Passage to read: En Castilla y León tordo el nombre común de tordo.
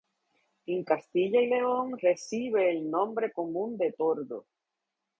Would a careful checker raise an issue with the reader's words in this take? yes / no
yes